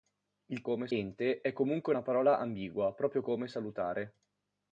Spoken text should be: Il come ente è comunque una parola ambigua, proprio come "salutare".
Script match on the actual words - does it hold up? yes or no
yes